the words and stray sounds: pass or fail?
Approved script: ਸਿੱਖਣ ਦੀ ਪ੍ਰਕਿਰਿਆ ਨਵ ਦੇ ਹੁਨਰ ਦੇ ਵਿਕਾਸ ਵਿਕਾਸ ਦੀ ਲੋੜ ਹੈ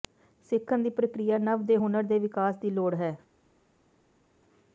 fail